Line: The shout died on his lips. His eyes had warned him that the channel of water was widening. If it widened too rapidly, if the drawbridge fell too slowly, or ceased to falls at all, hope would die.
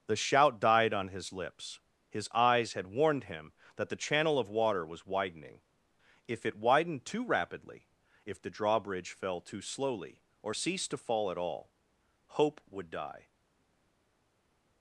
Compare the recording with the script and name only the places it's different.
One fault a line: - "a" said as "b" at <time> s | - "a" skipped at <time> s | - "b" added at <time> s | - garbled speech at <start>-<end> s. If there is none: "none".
- "falls" said as "fall" at 11.0 s